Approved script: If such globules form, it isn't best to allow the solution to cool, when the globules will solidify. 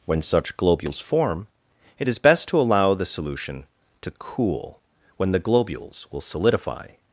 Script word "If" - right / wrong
wrong